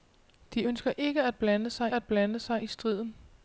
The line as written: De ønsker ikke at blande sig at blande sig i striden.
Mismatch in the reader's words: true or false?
false